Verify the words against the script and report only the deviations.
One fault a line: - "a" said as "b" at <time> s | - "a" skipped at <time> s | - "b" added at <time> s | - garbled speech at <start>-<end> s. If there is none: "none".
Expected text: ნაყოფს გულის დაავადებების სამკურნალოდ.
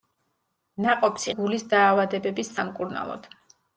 none